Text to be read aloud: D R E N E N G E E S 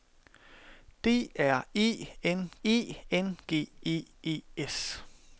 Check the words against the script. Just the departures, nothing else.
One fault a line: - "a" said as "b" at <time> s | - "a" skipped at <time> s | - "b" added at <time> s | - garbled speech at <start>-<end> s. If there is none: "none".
none